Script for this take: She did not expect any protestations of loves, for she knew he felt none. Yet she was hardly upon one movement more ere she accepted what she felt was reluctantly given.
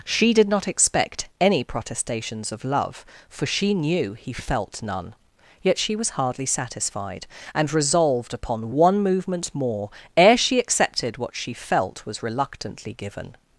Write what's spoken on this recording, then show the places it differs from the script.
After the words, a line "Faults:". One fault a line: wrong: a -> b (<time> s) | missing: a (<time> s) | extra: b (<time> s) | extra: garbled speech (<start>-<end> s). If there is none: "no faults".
She did not expect any protestations of love, for she knew he felt none. Yet she was hardly satisfied, and resolved upon one movement more ere she accepted what she felt was reluctantly given.
Faults:
wrong: loves -> love (2.6 s)
extra: satisfied and resolved (6.5 s)